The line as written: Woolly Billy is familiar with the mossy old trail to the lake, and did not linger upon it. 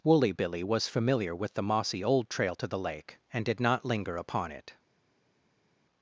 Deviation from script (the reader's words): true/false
true